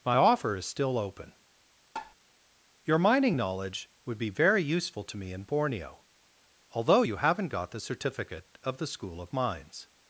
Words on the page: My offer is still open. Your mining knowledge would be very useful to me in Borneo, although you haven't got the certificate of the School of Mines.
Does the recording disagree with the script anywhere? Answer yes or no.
no